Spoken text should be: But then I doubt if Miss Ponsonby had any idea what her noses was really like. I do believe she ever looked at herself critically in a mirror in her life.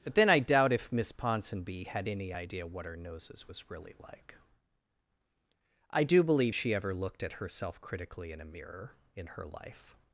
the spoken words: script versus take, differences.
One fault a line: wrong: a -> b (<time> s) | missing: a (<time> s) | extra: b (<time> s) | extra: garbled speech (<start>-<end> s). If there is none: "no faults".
no faults